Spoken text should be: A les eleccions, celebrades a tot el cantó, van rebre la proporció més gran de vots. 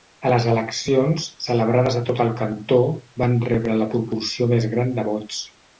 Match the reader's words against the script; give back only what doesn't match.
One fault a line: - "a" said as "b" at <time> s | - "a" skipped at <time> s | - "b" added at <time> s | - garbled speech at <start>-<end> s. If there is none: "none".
none